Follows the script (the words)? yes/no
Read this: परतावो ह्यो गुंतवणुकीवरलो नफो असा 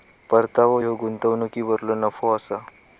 yes